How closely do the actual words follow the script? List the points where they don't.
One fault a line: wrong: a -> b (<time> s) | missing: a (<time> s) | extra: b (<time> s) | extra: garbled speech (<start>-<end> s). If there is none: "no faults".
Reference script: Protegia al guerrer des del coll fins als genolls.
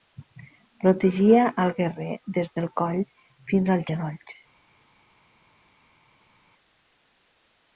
no faults